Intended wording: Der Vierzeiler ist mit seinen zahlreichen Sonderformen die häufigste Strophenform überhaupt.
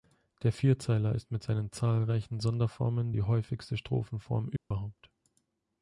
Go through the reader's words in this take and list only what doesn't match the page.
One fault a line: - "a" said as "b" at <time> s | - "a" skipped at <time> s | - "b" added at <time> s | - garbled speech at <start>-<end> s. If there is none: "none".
none